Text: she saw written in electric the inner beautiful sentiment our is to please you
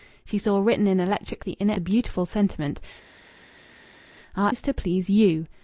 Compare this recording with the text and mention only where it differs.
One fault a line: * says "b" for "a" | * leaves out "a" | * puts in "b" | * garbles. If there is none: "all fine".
all fine